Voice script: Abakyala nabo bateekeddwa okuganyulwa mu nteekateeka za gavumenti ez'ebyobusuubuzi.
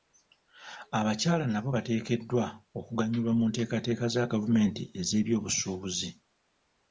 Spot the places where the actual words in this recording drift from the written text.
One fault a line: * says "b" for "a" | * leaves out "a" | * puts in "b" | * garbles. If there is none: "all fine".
all fine